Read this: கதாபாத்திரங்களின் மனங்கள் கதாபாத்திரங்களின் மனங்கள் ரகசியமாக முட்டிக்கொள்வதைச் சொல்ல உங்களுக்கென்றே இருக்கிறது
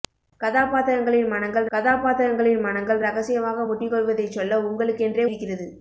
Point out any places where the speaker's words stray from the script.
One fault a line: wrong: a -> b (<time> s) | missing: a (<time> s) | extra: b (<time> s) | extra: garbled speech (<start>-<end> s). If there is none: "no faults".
no faults